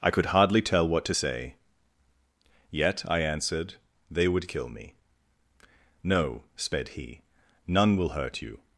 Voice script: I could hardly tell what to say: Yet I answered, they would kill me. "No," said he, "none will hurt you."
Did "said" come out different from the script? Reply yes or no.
yes